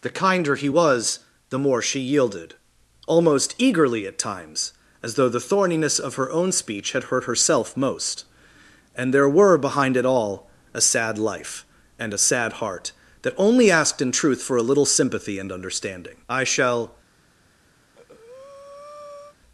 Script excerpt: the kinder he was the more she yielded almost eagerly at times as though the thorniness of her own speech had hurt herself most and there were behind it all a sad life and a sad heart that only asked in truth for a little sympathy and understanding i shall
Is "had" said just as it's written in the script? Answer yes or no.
yes